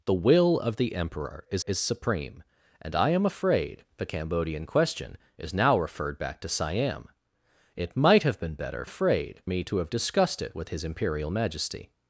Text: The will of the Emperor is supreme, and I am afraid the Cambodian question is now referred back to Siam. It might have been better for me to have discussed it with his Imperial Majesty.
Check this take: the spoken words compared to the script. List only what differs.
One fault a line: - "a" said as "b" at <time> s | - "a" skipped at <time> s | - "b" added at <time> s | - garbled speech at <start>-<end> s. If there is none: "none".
- "is" added at 1.7 s
- "for" said as "afraid" at 8.8 s